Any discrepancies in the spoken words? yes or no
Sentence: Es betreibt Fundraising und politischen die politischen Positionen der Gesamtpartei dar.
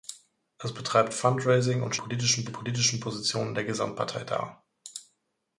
no